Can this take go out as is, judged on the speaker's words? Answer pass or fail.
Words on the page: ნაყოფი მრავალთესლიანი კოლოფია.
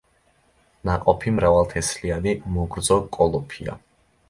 fail